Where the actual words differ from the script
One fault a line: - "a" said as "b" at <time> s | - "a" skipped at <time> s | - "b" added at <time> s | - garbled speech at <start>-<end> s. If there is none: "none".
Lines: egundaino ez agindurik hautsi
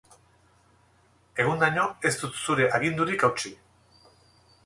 - "dut zure" added at 2.2 s